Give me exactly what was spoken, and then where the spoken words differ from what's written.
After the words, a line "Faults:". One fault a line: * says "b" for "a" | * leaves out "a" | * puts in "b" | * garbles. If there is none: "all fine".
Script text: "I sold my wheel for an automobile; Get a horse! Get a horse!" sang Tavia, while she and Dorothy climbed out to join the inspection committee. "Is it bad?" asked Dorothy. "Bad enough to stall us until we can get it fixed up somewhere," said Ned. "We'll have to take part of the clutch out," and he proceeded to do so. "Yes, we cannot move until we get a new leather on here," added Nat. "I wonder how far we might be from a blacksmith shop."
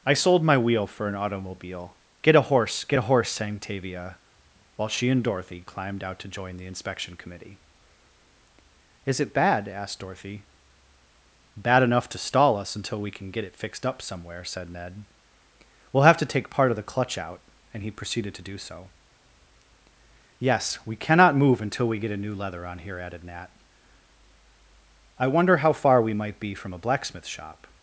"I sold my wheel for an automobile; Get a horse! Get a horse!" sang Tavia, while she and Dorothy climbed out to join the inspection committee. "Is it bad?" asked Dorothy. "Bad enough to stall us until we can get it fixed up somewhere," said Ned. "We'll have to take part of the clutch out," and he proceeded to do so. "Yes, we cannot move until we get a new leather on here," added Nat. "I wonder how far we might be from a blacksmith shop."
Faults:
all fine